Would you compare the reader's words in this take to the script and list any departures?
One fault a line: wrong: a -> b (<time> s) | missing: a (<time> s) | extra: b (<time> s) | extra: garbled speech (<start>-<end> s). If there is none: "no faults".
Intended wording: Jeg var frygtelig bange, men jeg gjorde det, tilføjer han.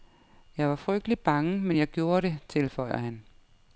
no faults